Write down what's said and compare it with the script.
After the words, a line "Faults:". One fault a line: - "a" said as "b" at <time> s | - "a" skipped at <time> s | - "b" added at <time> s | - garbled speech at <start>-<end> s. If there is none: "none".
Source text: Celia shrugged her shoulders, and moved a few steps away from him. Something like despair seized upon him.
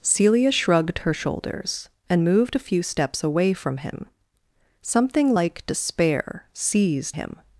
Celia shrugged her shoulders, and moved a few steps away from him. Something like despair seized him.
Faults:
- "upon" skipped at 7.2 s